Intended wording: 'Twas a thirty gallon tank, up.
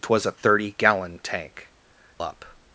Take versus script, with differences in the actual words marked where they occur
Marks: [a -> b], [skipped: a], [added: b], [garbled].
'Twas a thirty gallon tank, up.